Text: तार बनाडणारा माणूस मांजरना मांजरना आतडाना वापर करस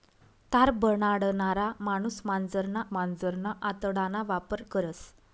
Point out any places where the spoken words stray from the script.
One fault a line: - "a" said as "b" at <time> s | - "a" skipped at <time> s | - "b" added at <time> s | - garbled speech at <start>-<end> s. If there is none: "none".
none